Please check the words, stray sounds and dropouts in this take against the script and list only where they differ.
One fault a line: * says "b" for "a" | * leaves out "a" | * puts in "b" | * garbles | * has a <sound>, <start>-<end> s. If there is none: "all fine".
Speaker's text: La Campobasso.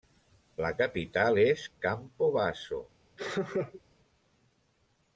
* puts in "capital és"
* has a laugh, 3.2-3.8 s